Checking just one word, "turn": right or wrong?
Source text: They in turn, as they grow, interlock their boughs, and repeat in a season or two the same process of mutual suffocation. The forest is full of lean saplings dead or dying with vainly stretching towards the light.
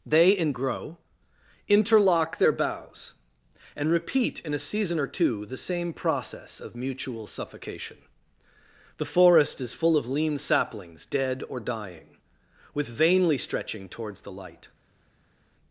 wrong